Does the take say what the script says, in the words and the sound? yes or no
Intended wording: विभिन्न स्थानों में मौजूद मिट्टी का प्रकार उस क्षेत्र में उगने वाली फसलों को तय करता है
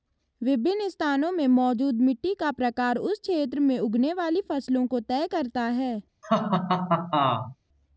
no